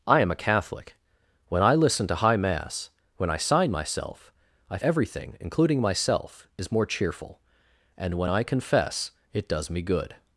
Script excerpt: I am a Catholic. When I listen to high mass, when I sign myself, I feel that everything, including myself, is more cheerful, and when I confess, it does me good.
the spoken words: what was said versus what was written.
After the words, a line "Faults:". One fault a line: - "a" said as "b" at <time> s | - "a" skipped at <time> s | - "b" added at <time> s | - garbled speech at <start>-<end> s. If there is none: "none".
I am a Catholic. When I listen to high mass, when I sign myself, I everything, including myself, is more cheerful, and when I confess, it does me good.
Faults:
- "feel that" skipped at 4.8 s